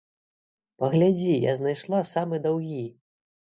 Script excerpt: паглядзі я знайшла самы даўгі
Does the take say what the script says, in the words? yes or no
yes